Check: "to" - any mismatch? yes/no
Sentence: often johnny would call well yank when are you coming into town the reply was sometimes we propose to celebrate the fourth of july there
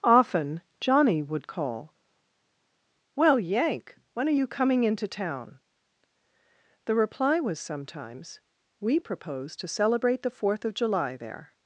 no